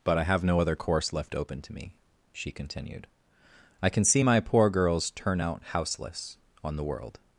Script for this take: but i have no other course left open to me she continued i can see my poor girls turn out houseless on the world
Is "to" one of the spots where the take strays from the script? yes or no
no